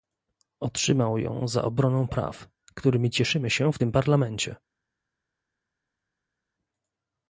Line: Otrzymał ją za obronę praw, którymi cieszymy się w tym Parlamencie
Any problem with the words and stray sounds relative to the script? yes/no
no